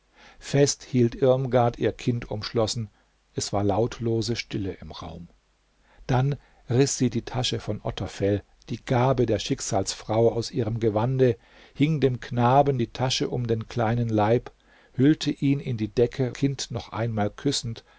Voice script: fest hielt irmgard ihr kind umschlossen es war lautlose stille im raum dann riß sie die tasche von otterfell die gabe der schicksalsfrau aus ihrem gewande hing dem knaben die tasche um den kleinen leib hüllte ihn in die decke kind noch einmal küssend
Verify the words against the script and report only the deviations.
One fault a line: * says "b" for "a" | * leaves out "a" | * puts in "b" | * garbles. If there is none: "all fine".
all fine